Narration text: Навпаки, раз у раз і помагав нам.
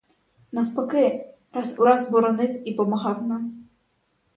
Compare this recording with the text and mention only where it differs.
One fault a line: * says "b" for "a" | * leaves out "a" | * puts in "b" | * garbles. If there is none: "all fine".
* puts in "боронив"